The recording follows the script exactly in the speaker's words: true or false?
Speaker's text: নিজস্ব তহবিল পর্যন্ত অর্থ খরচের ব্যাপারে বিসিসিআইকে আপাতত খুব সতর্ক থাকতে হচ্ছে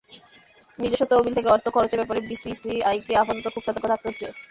false